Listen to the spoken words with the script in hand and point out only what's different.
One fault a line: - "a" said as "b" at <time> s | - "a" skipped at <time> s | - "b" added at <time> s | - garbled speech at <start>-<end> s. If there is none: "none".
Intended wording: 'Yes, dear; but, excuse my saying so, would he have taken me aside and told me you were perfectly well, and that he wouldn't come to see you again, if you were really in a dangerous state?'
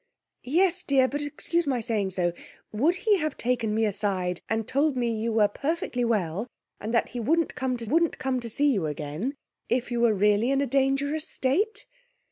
- "wouldn't come to" added at 7.8 s